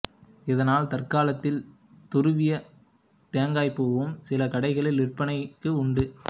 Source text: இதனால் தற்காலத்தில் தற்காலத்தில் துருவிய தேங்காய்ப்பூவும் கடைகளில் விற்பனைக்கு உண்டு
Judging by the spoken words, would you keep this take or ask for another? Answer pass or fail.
fail